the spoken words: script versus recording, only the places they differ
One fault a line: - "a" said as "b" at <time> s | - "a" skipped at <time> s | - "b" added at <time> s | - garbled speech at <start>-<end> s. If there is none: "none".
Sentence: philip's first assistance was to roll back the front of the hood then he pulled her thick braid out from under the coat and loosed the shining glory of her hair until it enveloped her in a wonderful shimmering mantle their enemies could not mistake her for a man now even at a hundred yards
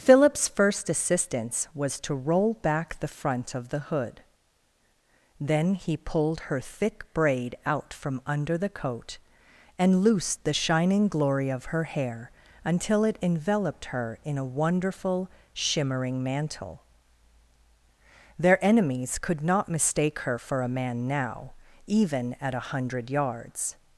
none